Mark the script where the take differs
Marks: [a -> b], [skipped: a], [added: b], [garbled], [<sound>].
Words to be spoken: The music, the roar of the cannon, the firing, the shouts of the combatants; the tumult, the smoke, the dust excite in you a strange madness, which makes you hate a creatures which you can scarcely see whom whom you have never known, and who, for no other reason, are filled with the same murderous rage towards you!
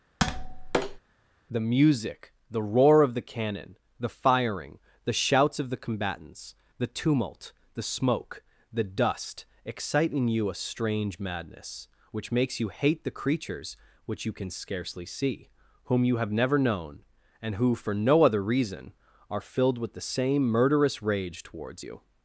[tap] The music, the roar of the cannon, the firing, the shouts of the combatants; the tumult, the smoke, the dust excite in you a strange madness, which makes you hate [a -> the] creatures which you can scarcely see whom [skipped: whom] you have never known, and who, for no other reason, are filled with the same murderous rage towards you!